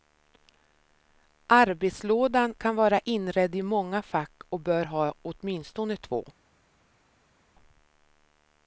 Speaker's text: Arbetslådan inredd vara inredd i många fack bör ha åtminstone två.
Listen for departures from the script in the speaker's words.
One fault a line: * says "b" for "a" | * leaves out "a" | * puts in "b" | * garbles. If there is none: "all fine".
* says "kan" for "inredd"
* puts in "och"